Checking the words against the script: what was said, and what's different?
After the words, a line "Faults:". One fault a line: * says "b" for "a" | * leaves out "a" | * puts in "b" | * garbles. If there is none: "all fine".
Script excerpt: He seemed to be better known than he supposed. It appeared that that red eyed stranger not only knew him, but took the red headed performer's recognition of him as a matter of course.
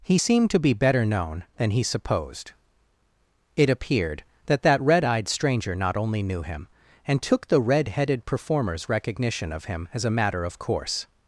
He seemed to be better known than he supposed. It appeared that that red eyed stranger not only knew him, and took the red headed performer's recognition of him as a matter of course.
Faults:
* says "and" for "but"